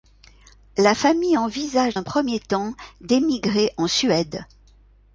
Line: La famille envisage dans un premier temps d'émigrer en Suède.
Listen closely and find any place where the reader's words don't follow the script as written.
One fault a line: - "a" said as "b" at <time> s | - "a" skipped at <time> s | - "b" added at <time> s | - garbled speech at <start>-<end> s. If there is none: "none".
- "dans" skipped at 1.9 s